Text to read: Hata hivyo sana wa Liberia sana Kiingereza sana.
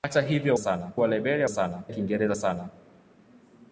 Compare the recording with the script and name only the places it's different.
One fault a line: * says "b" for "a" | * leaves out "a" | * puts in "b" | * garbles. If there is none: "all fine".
all fine